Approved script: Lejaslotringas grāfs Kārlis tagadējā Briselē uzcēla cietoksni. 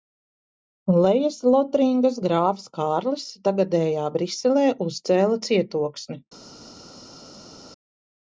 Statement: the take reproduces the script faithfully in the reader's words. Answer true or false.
true